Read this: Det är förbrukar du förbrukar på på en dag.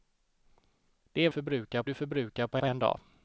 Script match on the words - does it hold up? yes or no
yes